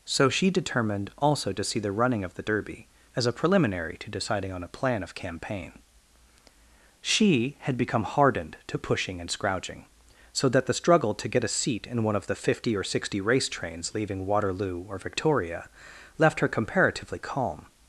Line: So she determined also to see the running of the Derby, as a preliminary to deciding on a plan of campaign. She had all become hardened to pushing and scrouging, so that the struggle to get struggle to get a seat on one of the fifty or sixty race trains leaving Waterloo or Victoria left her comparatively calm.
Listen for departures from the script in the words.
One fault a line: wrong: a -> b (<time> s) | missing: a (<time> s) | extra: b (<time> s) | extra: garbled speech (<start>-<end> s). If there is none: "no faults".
missing: all (7.8 s)
missing: struggle to get (11.4 s)
wrong: on -> in (11.8 s)